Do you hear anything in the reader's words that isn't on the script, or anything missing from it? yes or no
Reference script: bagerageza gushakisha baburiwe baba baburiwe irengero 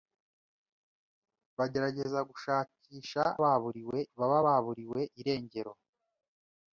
no